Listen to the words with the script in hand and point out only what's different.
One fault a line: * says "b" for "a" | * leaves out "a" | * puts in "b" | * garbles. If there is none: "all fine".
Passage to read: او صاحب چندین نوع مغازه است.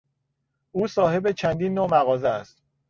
all fine